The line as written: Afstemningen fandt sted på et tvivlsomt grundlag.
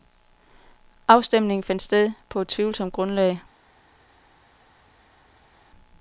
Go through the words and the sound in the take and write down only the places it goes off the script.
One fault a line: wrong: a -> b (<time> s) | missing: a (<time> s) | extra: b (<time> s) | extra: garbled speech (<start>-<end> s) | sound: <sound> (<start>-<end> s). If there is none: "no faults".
no faults